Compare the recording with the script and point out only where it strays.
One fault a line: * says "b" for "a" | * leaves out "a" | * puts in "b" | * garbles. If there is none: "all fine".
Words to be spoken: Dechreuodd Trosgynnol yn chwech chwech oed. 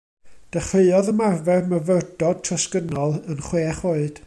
* puts in "ymarfer Myfyrdod"
* leaves out "chwech"